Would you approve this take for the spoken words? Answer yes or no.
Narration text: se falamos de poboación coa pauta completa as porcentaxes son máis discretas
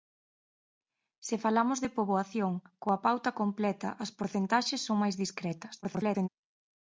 no